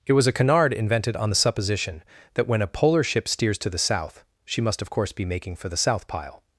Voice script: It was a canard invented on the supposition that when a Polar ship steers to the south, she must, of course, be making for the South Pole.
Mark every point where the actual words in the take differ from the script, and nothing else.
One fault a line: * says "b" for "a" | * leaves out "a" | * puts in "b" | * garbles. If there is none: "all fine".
* says "Pile" for "Pole"